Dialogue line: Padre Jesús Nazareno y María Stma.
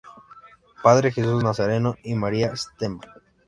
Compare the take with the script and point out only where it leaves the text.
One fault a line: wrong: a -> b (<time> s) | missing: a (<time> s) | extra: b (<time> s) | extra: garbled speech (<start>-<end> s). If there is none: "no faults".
no faults